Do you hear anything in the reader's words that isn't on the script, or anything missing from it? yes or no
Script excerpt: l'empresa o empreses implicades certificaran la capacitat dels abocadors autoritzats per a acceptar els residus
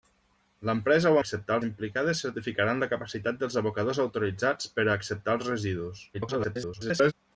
yes